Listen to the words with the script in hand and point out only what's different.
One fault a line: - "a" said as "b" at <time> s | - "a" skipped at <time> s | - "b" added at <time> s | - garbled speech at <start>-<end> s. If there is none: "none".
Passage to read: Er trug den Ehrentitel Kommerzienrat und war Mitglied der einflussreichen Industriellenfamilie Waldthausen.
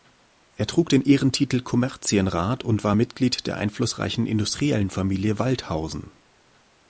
none